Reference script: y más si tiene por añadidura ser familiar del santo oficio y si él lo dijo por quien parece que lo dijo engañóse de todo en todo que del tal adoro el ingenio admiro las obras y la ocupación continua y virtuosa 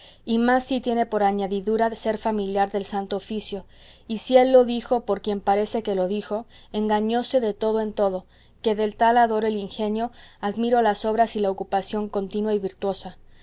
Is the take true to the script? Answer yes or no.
yes